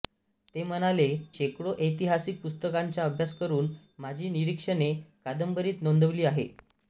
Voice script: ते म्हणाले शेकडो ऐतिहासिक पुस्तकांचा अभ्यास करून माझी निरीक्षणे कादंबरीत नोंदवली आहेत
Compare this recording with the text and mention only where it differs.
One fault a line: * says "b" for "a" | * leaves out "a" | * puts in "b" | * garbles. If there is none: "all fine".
all fine